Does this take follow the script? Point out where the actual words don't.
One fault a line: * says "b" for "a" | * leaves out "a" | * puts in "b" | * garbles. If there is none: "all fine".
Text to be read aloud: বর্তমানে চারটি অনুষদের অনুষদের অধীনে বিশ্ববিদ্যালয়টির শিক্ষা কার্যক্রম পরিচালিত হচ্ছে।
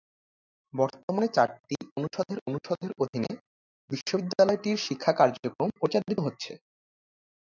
all fine